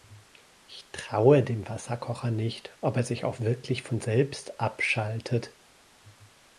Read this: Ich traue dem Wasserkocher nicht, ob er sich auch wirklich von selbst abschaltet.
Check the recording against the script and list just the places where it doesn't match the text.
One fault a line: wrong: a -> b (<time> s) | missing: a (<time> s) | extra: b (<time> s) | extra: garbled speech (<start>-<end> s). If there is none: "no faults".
no faults